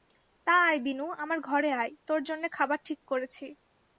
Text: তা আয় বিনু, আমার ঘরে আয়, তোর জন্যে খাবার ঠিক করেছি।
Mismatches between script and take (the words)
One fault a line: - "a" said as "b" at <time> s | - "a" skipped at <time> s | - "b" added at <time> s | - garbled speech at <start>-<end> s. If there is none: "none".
none